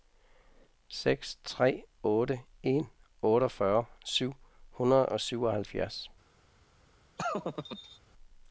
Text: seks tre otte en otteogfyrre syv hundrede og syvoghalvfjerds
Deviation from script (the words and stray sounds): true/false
true